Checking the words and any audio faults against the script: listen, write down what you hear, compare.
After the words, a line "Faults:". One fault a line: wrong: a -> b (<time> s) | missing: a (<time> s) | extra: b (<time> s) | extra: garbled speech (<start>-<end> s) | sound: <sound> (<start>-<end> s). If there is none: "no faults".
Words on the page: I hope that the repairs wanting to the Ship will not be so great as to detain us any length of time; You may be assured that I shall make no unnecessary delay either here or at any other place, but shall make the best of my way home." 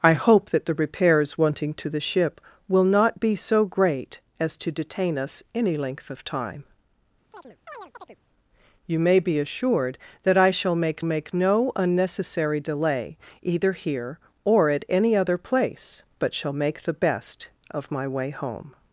I hope that the repairs wanting to the Ship will not be so great as to detain us any length of time; You may be assured that I shall make make no unnecessary delay either here or at any other place, but shall make the best of my way home."
Faults:
sound: chirp (7.3-8.2 s)
extra: make (11.0 s)